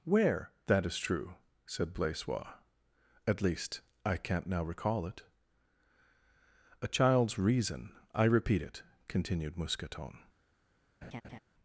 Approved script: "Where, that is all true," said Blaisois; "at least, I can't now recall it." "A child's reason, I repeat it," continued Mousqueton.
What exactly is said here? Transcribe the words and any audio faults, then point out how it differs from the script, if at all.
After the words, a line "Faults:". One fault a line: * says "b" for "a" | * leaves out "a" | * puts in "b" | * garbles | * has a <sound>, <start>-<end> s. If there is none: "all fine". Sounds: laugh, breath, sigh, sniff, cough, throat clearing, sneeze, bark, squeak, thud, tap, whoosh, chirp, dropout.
"Where, that is true," said Blaisois; "at least, I can't now recall it." "A child's reason, I repeat it," continued Mousqueton.
Faults:
* leaves out "all"
* has a laugh, 11.0-11.4 s